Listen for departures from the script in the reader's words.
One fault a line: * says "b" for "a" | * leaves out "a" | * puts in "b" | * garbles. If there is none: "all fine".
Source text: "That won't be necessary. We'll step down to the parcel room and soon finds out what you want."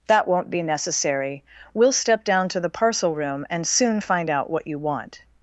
* says "find" for "finds"